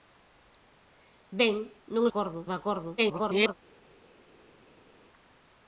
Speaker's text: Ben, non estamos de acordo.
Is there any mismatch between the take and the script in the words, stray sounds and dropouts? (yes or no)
yes